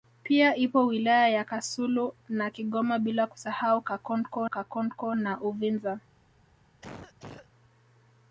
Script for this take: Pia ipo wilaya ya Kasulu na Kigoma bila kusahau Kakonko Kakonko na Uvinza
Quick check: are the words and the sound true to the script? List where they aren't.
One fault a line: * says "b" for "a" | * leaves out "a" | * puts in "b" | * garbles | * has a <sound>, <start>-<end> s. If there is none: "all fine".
* has a cough, 6.8-7.5 s